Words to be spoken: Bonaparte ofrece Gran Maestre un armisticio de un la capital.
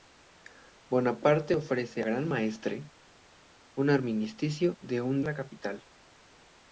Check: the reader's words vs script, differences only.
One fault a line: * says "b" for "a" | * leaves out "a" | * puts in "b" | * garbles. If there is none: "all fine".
all fine